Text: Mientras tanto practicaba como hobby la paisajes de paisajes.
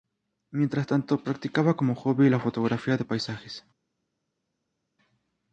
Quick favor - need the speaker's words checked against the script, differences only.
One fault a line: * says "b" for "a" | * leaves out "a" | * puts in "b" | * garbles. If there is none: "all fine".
* says "fotografía" for "paisajes"